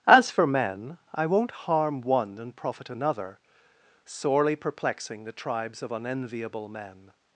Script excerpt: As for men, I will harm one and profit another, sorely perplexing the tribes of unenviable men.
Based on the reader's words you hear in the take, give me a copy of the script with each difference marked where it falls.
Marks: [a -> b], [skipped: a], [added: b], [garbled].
As for men, I [will -> won't] harm one and profit another, sorely perplexing the tribes of unenviable men.